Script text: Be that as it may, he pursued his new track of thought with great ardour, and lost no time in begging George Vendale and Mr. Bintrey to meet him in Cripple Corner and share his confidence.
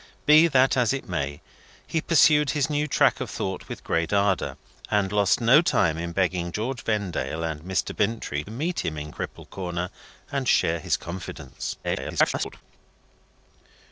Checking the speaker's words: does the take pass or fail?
fail